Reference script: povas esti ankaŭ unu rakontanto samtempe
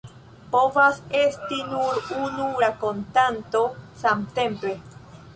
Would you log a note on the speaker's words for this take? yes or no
yes